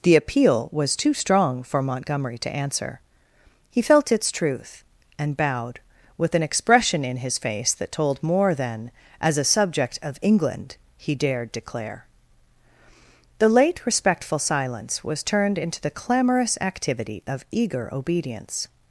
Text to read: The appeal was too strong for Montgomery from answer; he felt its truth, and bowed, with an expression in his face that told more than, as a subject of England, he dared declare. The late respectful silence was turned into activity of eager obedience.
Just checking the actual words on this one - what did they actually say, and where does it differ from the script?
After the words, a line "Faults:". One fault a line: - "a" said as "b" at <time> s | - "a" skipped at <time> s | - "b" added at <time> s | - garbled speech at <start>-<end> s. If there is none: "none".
The appeal was too strong for Montgomery to answer; he felt its truth, and bowed, with an expression in his face that told more than, as a subject of England, he dared declare. The late respectful silence was turned into the clamorous activity of eager obedience.
Faults:
- "from" said as "to" at 2.4 s
- "the clamorous" added at 15.8 s